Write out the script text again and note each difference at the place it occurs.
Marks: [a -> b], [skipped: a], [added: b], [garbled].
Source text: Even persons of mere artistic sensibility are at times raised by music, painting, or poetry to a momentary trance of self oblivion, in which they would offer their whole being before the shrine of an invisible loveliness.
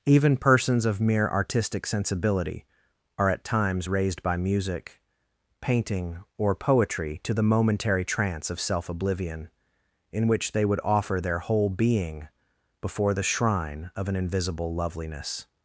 Even persons of mere artistic sensibility are at times raised by music, painting, or poetry to [a -> the] momentary trance of self oblivion, in which they would offer their whole being before the shrine of an invisible loveliness.